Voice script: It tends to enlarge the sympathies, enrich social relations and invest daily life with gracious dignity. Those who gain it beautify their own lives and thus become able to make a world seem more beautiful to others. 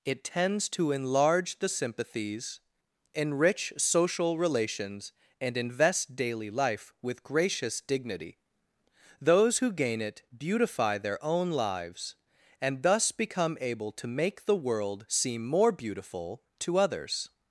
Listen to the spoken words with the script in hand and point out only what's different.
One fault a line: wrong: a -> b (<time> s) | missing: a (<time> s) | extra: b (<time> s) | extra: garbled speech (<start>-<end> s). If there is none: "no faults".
wrong: a -> the (14.4 s)